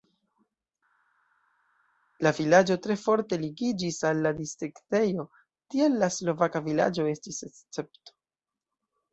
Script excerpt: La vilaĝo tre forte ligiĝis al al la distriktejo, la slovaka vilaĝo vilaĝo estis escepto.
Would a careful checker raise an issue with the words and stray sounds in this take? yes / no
yes